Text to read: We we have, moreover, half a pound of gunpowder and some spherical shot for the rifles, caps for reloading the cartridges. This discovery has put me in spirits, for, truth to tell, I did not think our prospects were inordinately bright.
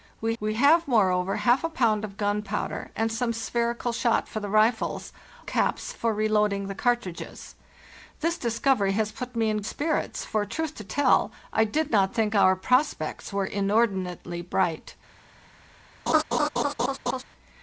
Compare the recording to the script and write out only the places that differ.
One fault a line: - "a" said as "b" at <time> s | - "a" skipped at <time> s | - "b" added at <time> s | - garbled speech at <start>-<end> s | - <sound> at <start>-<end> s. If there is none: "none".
- laugh at 16.1-17.2 s